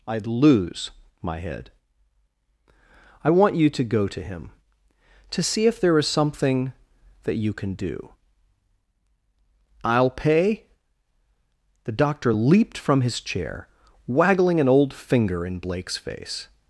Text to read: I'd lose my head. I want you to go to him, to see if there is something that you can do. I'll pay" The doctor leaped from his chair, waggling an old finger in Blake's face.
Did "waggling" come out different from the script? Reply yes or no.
no